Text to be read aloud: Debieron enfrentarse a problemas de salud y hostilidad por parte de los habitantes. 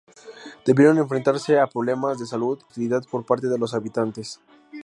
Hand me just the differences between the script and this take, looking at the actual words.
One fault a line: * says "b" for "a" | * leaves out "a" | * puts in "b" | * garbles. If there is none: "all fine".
* leaves out "y"